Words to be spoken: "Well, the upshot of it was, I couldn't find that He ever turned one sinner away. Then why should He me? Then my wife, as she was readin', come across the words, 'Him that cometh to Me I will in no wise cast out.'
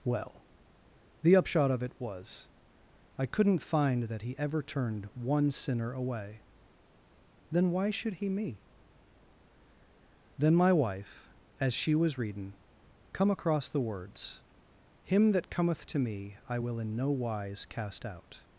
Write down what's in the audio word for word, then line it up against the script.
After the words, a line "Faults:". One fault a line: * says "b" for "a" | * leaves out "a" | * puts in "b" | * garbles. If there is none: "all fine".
"Well, the upshot of it was, I couldn't find that He ever turned one sinner away. Then why should He me? Then my wife, as she was readin', come across the words, 'Him that cometh to Me I will in no wise cast out.'
Faults:
all fine